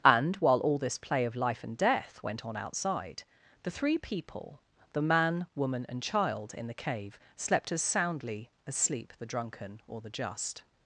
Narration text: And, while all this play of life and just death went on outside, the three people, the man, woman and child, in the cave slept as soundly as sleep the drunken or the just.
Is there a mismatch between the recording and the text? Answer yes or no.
yes